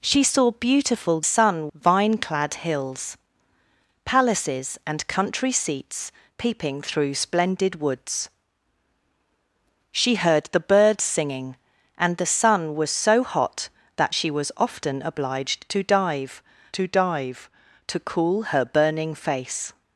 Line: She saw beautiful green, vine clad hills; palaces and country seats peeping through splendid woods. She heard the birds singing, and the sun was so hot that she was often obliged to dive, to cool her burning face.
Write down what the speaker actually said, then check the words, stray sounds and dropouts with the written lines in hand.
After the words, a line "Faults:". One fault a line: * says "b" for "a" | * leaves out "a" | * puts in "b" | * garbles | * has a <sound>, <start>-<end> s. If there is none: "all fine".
She saw beautiful sun, vine clad hills; palaces and country seats peeping through splendid woods. She heard the birds singing, and the sun was so hot that she was often obliged to dive to dive, to cool her burning face.
Faults:
* says "sun" for "green"
* puts in "dive to"